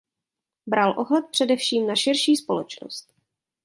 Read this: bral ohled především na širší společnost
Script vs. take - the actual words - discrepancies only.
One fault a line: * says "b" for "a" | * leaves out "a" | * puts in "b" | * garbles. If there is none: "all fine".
all fine